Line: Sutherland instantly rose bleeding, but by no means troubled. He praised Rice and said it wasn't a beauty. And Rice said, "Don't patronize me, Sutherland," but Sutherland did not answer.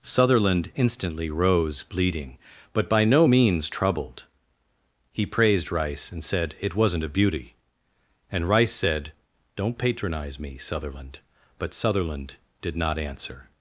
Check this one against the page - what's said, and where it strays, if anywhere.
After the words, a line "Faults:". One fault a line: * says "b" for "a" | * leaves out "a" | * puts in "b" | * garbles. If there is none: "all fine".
Sutherland instantly rose bleeding, but by no means troubled. He praised Rice and said it wasn't a beauty. And Rice said, "Don't patronize me, Sutherland," but Sutherland did not answer.
Faults:
all fine